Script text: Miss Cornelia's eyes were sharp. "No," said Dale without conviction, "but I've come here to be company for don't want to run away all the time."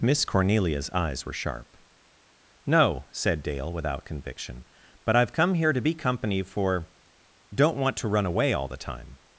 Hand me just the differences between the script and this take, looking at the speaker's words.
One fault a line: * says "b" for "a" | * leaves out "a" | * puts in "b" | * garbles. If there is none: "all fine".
all fine